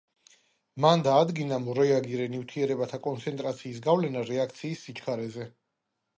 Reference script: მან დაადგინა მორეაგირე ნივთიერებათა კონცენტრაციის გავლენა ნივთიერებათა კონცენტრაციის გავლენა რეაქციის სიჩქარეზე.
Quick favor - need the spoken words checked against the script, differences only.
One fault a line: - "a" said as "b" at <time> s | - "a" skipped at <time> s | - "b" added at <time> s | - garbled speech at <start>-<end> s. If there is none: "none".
- "ნივთიერებათა კონცენტრაციის გავლენა" skipped at 4.2 s